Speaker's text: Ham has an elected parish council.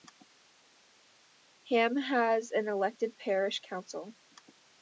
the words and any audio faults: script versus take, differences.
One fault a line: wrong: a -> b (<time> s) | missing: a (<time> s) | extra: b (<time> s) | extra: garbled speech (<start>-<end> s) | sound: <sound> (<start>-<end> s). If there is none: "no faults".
no faults